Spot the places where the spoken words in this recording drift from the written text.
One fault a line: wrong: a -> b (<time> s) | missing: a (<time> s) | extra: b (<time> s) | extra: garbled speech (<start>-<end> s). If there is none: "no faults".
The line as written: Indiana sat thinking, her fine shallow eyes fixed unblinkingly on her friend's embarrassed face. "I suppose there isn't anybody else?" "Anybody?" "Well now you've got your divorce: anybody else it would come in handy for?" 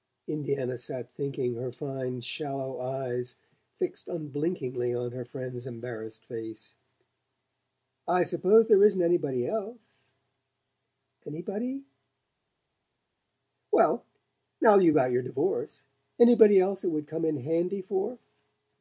no faults